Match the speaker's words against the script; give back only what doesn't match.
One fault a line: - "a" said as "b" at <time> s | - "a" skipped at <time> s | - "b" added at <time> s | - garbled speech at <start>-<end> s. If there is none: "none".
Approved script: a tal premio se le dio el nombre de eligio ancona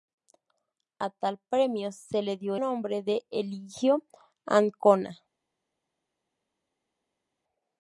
- "el" skipped at 2.5 s